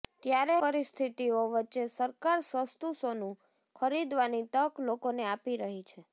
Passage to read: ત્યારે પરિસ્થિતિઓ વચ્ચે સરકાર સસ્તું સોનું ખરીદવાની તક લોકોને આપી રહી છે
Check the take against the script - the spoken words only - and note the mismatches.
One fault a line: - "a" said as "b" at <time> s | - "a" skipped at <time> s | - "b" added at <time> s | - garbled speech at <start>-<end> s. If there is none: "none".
none